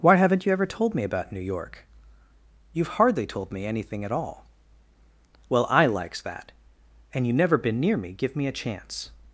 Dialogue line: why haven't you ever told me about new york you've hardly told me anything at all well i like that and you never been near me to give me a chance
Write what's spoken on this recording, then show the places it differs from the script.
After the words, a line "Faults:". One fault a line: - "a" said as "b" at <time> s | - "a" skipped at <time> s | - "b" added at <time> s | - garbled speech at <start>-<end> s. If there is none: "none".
why haven't you ever told me about new york you've hardly told me anything at all well i likes that and you never been near me give me a chance
Faults:
- "like" said as "likes" at 5.9 s
- "to" skipped at 8.1 s